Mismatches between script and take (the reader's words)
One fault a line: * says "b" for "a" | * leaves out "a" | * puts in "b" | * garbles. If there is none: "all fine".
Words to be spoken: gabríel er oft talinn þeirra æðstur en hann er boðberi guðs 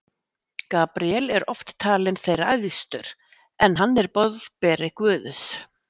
all fine